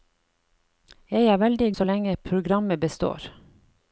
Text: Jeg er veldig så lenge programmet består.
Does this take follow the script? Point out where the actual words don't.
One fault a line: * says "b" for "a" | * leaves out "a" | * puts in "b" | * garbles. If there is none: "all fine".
all fine